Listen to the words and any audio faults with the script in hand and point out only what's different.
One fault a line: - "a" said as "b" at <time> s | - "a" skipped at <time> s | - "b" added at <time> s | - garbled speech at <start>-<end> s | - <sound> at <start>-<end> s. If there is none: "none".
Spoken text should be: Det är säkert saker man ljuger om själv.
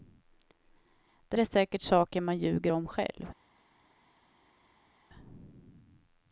none